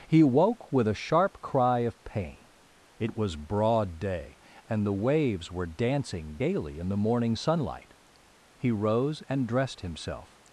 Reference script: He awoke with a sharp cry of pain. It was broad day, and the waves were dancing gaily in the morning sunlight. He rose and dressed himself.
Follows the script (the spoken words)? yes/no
no